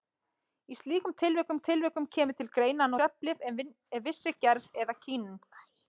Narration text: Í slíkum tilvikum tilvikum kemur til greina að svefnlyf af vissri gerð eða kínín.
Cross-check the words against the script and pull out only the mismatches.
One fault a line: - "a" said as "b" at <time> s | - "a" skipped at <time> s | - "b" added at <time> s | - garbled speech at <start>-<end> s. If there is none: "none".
none